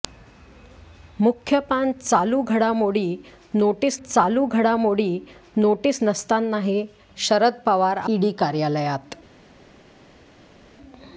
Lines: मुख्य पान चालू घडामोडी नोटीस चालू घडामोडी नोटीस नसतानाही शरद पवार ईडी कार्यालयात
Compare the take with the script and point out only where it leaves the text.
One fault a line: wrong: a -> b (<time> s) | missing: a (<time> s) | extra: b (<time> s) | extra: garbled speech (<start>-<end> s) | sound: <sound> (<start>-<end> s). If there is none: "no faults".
no faults